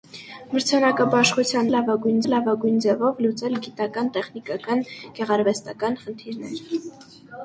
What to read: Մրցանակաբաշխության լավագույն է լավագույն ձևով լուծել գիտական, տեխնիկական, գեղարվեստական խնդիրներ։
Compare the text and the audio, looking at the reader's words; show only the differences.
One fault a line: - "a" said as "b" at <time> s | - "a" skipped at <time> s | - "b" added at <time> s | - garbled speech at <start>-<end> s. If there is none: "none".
none